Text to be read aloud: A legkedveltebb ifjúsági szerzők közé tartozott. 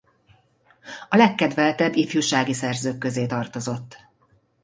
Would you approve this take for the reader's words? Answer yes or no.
yes